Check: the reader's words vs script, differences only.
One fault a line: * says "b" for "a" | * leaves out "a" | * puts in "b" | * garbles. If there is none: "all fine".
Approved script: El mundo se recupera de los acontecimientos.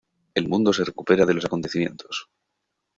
all fine